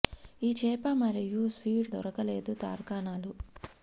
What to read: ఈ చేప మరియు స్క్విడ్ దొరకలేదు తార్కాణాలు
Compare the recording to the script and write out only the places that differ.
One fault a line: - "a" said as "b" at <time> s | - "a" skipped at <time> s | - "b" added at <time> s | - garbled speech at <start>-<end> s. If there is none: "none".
none